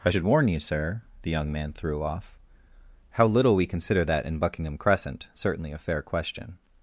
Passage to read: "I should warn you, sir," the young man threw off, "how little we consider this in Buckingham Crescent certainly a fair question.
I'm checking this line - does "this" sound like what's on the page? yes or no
no